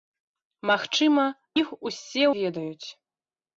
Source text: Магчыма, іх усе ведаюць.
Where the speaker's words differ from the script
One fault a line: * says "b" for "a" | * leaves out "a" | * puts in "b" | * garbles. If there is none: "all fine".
all fine